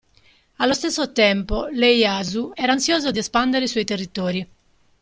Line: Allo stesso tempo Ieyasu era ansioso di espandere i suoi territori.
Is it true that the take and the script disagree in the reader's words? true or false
false